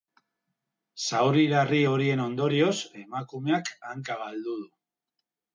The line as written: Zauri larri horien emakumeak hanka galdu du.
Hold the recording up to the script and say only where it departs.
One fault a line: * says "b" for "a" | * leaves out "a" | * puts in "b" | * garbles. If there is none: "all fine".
* puts in "ondorioz"